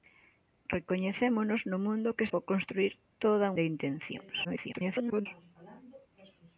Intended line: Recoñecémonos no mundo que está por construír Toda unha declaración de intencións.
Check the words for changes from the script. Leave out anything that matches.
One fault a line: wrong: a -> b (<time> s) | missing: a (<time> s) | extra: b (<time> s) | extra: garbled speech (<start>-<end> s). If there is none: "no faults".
missing: está (2.2 s)
missing: unha declaración (3.5 s)
extra: garbled speech (4.4-5.3 s)